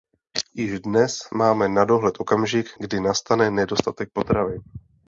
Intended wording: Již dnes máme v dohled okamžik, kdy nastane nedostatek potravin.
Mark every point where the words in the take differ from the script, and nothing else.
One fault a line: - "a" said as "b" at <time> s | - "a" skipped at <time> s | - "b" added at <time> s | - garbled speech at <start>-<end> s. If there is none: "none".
- "v" said as "na" at 1.7 s